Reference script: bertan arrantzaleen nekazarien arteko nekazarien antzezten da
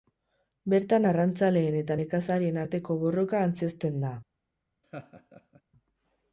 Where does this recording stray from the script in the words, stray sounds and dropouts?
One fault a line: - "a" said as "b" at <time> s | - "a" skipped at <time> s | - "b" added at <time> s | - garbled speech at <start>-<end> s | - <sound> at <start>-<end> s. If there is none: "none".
- "eta" added at 1.8 s
- "nekazarien" said as "borroka" at 3.0 s
- laugh at 4.8-5.6 s